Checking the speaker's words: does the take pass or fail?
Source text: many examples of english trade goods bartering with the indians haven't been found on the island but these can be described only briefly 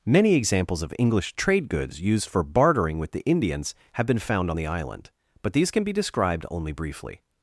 fail